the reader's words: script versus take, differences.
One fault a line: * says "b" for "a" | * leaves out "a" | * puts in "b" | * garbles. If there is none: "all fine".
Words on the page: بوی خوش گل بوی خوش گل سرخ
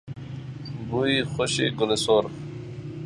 * leaves out "بوی خوش گل"